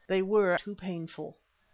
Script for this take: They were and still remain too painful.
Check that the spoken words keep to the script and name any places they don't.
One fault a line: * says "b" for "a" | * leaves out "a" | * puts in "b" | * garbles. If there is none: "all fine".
* leaves out "and still remain"